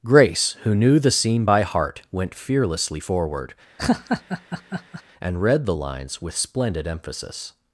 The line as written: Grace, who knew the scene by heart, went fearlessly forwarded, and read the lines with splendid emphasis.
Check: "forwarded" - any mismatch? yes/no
yes